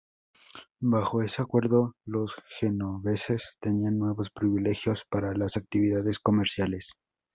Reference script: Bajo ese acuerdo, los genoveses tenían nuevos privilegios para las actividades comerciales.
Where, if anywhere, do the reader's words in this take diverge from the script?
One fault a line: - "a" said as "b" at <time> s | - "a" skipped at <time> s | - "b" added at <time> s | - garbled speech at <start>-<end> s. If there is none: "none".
none